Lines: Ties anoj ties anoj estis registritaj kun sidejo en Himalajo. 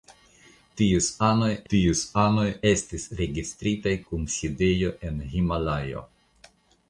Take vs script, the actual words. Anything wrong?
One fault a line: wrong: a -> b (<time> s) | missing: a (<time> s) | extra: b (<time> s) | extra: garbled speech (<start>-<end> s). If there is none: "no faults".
no faults